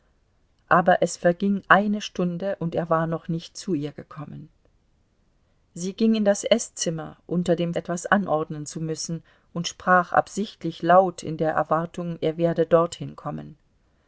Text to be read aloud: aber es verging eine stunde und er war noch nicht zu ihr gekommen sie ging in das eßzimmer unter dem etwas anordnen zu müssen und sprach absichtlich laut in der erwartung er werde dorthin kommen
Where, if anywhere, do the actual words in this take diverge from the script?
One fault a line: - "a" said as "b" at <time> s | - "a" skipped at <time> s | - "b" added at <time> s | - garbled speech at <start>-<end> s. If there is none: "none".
none